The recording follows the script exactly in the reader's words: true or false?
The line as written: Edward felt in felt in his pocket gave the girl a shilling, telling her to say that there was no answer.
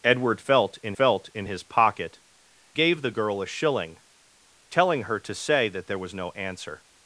true